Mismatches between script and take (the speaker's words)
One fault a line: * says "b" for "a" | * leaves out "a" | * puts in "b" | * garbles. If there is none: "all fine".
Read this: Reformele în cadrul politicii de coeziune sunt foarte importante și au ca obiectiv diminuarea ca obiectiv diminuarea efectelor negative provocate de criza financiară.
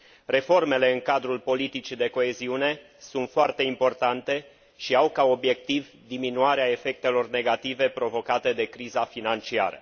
* leaves out "ca obiectiv diminuarea"